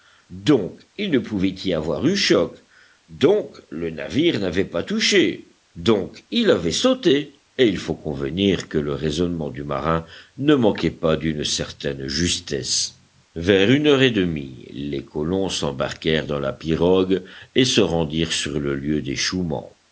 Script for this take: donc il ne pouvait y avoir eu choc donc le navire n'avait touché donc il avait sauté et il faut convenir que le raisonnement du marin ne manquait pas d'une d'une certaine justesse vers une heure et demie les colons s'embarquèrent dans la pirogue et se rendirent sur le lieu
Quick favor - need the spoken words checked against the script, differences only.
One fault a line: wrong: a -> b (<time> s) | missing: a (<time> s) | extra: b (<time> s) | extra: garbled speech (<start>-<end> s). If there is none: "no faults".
extra: pas (4.7 s)
missing: d'une (11.4 s)